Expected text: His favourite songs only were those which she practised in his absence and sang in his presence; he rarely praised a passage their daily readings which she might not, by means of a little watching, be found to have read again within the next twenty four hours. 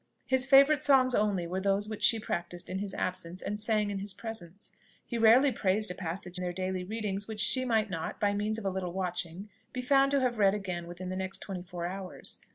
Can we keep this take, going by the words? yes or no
yes